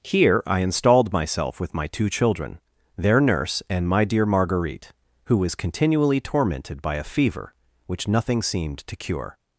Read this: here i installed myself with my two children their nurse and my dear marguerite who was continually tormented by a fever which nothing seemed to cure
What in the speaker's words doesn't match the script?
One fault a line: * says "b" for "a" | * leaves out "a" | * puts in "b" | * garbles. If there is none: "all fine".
all fine